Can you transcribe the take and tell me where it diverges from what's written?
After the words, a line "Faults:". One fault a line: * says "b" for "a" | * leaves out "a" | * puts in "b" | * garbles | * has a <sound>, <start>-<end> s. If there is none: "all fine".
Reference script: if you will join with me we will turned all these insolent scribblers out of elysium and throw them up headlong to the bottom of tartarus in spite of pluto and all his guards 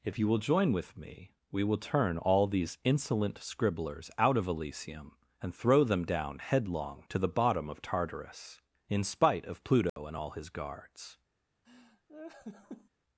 if you will join with me we will turn all these insolent scribblers out of elysium and throw them down headlong to the bottom of tartarus in spite of pluto and all his guards
Faults:
* says "turn" for "turned"
* says "down" for "up"
* has a dropout, 9.9-10.0 s
* has a laugh, 11.6-12.9 s